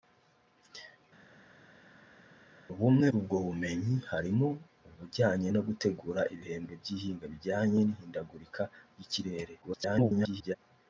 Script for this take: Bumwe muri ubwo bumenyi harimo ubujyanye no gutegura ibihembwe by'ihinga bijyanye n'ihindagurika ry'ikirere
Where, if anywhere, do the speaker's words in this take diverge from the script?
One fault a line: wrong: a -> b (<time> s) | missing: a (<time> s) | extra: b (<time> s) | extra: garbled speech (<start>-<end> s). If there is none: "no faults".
missing: muri (3.1 s)
extra: garbled speech (9.6-10.6 s)